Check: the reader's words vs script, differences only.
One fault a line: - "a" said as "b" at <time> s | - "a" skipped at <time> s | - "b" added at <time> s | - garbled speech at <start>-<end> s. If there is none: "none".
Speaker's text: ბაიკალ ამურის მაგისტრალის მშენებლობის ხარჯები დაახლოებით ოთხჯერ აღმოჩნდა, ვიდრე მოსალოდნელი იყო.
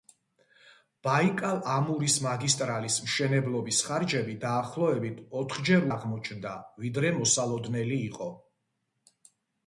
none